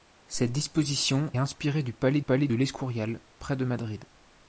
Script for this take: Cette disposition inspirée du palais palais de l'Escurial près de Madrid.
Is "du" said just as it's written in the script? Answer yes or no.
yes